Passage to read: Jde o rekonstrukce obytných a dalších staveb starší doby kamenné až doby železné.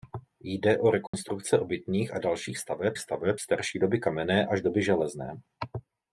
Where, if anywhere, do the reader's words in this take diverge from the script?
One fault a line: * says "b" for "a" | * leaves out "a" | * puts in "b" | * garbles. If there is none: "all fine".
* puts in "staveb"